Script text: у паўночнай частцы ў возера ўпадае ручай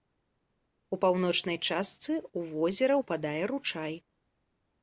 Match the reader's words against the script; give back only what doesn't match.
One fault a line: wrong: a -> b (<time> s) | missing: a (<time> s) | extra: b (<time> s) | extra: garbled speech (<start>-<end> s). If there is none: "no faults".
no faults